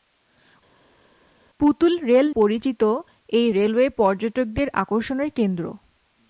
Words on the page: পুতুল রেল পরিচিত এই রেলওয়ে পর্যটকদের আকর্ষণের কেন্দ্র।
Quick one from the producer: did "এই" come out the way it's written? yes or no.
yes